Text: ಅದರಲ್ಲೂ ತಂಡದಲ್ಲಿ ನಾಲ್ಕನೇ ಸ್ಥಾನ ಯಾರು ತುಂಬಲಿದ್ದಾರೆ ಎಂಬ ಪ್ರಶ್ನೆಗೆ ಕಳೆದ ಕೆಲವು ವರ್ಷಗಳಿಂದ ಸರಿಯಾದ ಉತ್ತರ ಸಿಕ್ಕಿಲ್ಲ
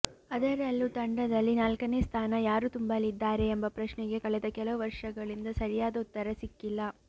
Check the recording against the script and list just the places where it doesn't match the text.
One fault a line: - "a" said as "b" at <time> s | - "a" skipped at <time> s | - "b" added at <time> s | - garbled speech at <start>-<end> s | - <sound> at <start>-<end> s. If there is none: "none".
none